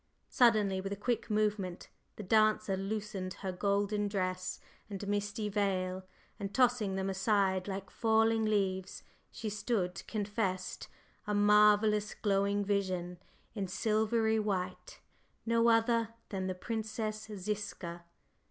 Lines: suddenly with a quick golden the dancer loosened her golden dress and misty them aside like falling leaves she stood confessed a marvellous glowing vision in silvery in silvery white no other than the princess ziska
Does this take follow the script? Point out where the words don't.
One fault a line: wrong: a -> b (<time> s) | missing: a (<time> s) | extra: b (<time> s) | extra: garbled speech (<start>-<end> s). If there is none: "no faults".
wrong: golden -> movement (1.3 s)
extra: veil and tossing (5.5 s)
missing: in silvery (14.4 s)